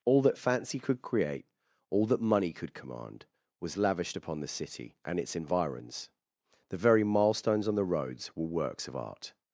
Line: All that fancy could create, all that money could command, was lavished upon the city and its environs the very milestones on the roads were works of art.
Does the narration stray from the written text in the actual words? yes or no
no